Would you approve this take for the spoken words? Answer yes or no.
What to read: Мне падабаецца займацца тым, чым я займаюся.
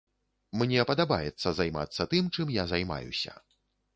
yes